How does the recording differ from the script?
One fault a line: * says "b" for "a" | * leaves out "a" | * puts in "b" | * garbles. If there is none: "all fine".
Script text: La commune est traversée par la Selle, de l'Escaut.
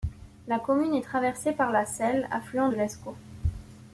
* puts in "affluent"